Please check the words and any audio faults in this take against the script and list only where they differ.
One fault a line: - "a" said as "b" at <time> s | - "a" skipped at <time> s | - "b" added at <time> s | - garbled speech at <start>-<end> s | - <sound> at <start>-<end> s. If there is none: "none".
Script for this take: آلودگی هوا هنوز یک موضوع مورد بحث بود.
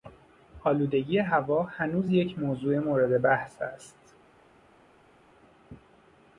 - "بود" said as "است" at 3.6 s